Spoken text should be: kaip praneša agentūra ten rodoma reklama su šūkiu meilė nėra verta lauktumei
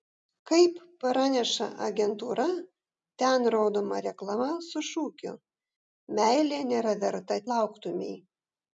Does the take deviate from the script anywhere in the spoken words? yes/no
no